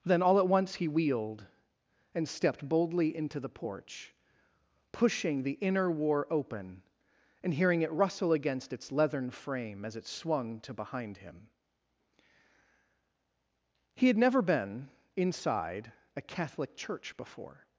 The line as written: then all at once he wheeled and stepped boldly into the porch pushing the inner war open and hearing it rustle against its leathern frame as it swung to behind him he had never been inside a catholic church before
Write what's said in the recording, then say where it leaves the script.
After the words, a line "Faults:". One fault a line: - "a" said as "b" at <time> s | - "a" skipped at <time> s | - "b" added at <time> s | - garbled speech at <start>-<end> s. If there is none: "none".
then all at once he wheeled and stepped boldly into the porch pushing the inner war open and hearing it rustle against its leathern frame as it swung to behind him he had never been inside a catholic church before
Faults:
none